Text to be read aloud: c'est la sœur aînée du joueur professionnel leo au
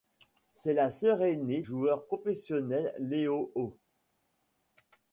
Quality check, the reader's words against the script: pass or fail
fail